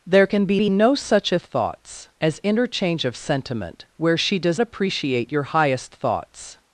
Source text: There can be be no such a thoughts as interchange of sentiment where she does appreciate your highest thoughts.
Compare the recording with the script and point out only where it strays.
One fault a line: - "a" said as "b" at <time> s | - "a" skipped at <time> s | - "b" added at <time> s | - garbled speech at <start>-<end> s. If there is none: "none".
none